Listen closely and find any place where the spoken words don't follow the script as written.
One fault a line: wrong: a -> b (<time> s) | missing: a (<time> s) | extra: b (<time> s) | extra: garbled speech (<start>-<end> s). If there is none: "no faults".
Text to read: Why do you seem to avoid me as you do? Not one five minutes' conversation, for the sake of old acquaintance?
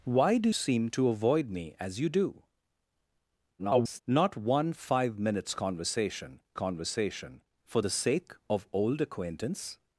missing: you (0.5 s)
extra: garbled speech (3.6-4.0 s)
extra: conversation (6.6 s)